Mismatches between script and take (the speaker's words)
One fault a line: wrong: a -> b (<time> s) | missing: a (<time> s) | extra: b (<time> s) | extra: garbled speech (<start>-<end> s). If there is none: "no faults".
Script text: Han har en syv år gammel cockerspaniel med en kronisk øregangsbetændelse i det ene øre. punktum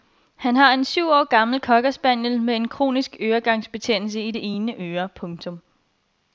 no faults